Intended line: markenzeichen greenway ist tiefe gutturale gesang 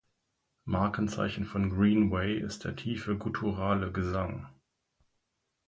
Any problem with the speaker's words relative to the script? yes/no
yes